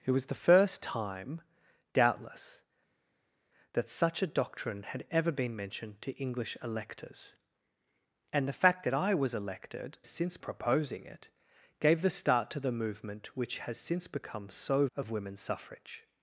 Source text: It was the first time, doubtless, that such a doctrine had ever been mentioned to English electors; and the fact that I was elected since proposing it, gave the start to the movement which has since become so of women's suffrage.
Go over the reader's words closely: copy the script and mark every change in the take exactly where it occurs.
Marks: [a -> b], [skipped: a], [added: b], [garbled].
It was the first time, doubtless, that such a doctrine had ever been mentioned to English electors; and the fact that I was elected since proposing it, gave the start to the movement which has since become so of women's suffrage.